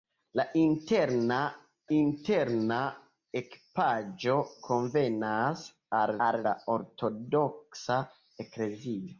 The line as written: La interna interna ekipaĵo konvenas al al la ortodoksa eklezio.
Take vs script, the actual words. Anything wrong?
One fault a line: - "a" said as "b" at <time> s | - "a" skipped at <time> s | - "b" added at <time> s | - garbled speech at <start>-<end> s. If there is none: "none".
none